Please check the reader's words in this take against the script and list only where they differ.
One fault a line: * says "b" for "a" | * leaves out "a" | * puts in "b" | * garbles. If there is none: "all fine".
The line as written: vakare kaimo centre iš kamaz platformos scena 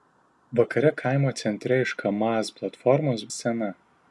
all fine